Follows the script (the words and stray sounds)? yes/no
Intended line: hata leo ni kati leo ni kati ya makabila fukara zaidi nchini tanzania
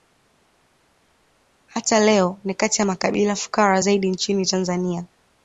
no